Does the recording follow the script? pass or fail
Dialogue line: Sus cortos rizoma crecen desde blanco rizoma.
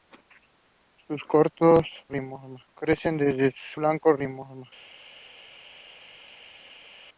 pass